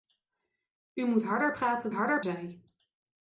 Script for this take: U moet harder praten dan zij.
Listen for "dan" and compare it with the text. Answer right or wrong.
wrong